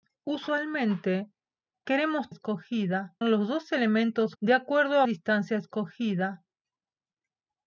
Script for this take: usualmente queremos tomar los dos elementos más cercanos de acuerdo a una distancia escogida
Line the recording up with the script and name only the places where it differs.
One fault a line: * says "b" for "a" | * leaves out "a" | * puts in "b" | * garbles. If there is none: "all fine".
* says "escogida" for "tomar"
* leaves out "más cercanos"
* leaves out "una"